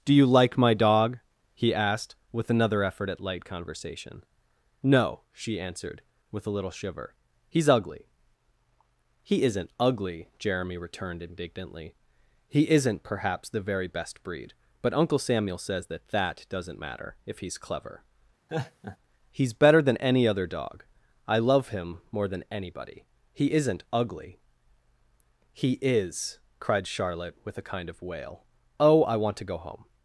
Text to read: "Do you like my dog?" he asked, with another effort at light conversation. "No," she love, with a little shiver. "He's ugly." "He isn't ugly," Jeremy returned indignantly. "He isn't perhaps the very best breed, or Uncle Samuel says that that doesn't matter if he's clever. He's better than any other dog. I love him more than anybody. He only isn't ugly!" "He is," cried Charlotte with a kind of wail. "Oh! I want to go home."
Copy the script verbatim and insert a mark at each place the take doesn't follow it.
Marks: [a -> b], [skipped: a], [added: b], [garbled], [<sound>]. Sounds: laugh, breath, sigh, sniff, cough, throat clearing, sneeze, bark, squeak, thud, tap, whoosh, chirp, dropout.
"Do you like my dog?" he asked, with another effort at light conversation. "No," she [love, -> answered] with a little shiver. "He's ugly." "He isn't ugly," Jeremy returned indignantly. "He isn't perhaps the very best breed, [or -> but] Uncle Samuel says that that doesn't matter if he's clever. [laugh] He's better than any other dog. I love him more than anybody. He [skipped: only] isn't ugly!" "He is," cried Charlotte with a kind of wail. "Oh! I want to go home."